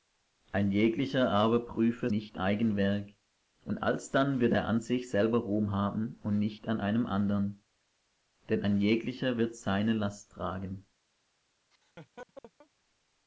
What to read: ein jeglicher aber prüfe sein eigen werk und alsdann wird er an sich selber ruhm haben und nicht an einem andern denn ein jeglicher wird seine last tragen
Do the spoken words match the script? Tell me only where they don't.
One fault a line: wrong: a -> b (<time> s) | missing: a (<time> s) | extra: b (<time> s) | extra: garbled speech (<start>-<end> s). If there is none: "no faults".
wrong: sein -> nicht (2.1 s)